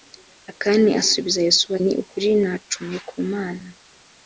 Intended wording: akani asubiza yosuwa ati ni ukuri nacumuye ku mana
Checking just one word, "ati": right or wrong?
wrong